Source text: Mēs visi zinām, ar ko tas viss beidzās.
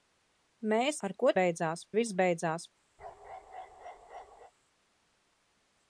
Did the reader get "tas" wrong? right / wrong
wrong